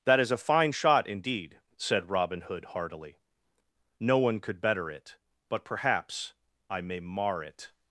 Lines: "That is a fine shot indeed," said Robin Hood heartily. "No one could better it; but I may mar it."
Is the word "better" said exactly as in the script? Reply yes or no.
yes